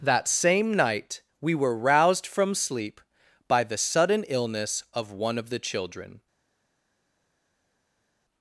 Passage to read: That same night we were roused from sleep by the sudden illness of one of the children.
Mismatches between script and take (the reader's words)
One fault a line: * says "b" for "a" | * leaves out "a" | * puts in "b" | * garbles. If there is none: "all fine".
all fine